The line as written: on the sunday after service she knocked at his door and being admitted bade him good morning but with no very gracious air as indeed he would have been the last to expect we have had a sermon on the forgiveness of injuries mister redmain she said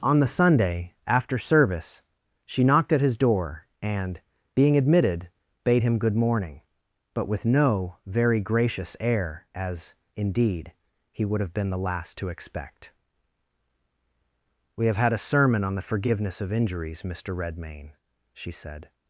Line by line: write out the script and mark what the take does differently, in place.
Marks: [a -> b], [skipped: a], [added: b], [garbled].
on the sunday after service she knocked at his door and being admitted bade him good morning but with no very gracious air as indeed he would have been the last to expect we have had a sermon on the forgiveness of injuries mister redmain she said